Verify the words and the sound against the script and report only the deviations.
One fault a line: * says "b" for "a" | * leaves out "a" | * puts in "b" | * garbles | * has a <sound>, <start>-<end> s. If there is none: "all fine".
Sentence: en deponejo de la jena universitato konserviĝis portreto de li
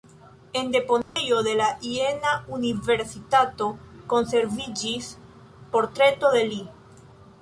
* has a dropout, 1.0-1.2 s